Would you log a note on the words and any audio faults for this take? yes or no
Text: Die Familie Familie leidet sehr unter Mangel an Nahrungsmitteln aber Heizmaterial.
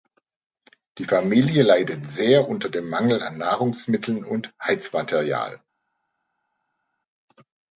yes